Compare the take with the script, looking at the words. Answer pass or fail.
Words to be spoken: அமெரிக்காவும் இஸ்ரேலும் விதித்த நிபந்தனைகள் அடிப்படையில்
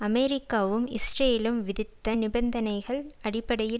pass